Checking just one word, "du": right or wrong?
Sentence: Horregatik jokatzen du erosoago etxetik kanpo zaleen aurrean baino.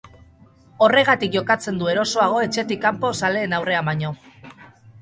right